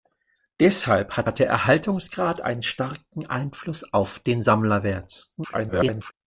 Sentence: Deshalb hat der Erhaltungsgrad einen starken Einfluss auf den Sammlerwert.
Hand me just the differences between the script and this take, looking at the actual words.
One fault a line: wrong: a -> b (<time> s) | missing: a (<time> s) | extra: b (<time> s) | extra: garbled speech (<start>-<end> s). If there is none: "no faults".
extra: hat (1.2 s)
extra: garbled speech (5.4-6.1 s)